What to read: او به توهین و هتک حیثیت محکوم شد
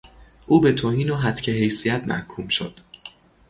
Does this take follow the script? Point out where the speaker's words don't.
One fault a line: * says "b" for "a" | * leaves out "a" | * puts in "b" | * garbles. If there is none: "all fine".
all fine